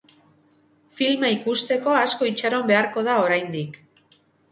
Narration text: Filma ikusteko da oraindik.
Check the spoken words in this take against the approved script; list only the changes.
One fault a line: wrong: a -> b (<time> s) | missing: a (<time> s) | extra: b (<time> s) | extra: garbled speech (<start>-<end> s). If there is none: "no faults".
extra: asko itxaron beharko (2.0 s)